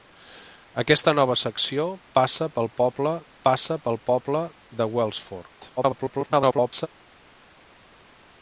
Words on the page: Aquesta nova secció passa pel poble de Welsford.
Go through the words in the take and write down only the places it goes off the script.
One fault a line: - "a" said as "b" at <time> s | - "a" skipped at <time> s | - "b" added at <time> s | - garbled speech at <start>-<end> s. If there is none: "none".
- "passa pel poble" added at 3.5 s
- garbled speech at 5.8-6.9 s